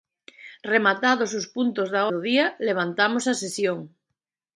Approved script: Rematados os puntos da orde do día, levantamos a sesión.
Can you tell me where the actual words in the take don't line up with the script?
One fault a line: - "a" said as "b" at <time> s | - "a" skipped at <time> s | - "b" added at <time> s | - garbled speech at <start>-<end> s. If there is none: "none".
- "orde" skipped at 2.0 s